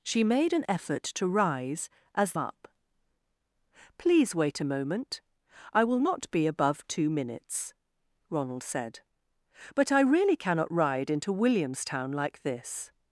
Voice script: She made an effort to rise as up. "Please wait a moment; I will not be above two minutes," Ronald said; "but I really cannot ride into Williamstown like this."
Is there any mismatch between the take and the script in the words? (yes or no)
no